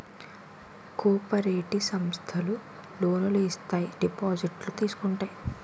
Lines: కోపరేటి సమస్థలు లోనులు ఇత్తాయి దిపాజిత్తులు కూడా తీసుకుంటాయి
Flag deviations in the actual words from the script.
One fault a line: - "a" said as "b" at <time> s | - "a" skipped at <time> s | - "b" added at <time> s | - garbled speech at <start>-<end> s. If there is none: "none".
- "కూడా" skipped at 4.7 s